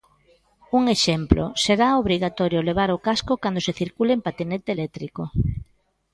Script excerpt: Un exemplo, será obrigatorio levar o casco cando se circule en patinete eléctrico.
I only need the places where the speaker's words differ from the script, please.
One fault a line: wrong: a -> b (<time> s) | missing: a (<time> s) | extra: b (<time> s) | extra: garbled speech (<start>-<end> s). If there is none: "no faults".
no faults